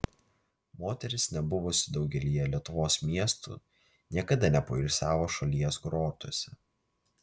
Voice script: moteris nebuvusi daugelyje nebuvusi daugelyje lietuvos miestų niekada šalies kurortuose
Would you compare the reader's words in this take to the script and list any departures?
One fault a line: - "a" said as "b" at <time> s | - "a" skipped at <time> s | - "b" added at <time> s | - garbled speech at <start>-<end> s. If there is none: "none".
- "nebuvusi daugelyje" skipped at 2.5 s
- "nepoilsiavo" added at 4.6 s